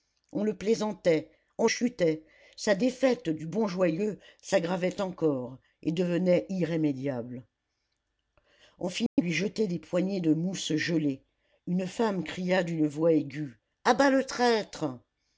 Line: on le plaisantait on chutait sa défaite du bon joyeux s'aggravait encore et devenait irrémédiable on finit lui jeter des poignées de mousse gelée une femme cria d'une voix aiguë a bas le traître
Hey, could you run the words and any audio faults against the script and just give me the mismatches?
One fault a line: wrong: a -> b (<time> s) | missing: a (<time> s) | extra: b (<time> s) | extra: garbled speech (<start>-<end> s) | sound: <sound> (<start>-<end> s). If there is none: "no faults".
sound: dropout (9.1-9.2 s)